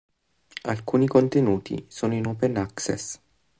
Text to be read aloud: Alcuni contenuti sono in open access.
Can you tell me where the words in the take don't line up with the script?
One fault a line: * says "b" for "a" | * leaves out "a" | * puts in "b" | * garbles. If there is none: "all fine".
all fine